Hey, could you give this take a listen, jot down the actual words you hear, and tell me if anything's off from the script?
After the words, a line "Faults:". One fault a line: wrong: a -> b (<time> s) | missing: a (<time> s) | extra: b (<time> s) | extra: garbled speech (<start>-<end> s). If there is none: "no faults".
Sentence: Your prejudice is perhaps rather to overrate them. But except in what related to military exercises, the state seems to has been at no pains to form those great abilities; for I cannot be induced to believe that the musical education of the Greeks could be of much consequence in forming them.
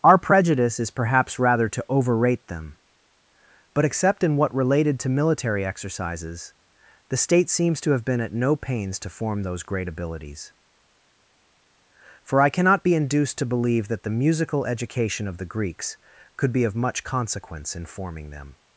Our prejudice is perhaps rather to overrate them. But except in what related to military exercises, the state seems to have been at no pains to form those great abilities; for I cannot be induced to believe that the musical education of the Greeks could be of much consequence in forming them.
Faults:
wrong: Your -> Our (0.0 s)
wrong: has -> have (7.9 s)